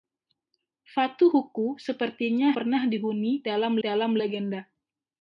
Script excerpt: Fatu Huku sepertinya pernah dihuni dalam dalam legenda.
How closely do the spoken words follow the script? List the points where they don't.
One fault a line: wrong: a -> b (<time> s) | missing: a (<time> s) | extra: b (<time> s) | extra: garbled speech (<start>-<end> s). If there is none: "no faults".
no faults